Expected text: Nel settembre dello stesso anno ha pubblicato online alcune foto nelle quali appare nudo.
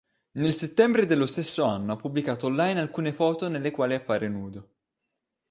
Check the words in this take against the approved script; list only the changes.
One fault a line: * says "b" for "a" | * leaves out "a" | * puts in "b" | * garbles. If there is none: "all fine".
all fine